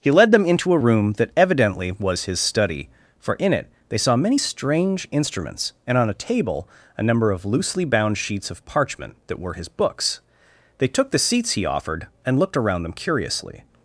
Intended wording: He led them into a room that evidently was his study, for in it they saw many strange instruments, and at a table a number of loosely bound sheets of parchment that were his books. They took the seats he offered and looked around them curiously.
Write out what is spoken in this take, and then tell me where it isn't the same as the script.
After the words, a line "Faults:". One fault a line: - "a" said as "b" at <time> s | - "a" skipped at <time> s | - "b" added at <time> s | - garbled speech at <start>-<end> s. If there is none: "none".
He led them into a room that evidently was his study, for in it they saw many strange instruments, and on a table a number of loosely bound sheets of parchment that were his books. They took the seats he offered and looked around them curiously.
Faults:
- "at" said as "on" at 6.0 s